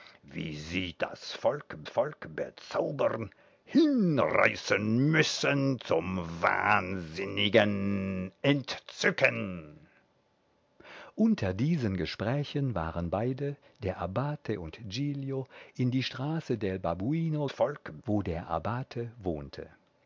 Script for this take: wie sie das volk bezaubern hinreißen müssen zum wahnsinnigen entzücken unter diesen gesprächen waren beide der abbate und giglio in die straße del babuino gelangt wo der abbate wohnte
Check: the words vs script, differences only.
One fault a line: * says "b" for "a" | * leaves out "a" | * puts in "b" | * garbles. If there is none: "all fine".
* puts in "volk"
* says "volk" for "gelangt"